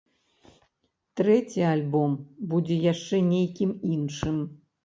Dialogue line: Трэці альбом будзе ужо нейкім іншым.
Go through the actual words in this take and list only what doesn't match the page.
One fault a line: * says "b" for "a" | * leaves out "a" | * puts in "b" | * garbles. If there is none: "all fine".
* says "яшчэ" for "ужо"